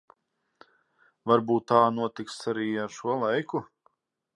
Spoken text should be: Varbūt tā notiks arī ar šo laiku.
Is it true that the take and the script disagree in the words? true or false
false